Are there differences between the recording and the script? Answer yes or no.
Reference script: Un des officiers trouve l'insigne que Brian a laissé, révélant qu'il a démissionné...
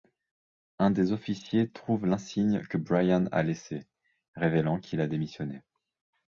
no